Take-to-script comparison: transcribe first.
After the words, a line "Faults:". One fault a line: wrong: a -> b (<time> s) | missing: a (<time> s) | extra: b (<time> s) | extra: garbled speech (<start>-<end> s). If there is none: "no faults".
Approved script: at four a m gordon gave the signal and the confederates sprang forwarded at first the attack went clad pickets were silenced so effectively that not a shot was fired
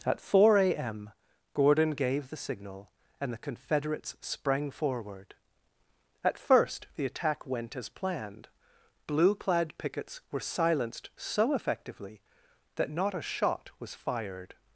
at four a m gordon gave the signal and the confederates sprang forward at first the attack went as planned blue clad pickets were silenced so effectively that not a shot was fired
Faults:
wrong: forwarded -> forward (4.7 s)
extra: as planned blue (7.8 s)